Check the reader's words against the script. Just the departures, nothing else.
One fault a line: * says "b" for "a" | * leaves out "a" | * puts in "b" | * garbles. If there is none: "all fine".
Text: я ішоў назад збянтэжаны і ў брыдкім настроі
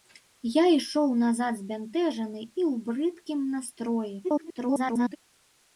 * garbles